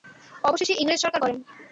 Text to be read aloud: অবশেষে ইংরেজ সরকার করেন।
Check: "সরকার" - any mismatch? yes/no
no